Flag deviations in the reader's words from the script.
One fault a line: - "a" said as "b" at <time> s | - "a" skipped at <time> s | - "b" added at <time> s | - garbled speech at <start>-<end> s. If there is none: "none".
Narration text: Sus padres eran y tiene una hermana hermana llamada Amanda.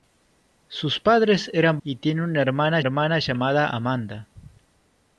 none